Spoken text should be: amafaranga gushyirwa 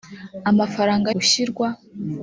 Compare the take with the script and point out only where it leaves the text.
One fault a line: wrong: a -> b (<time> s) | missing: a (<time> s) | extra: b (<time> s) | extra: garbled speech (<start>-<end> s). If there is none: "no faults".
no faults